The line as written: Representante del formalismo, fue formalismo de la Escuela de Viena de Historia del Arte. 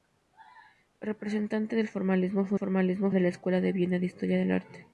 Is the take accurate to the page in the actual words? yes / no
yes